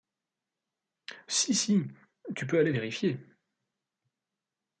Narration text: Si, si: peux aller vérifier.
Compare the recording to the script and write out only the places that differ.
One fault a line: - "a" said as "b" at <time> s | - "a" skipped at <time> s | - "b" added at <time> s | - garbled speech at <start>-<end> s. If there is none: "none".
- "tu" added at 2.4 s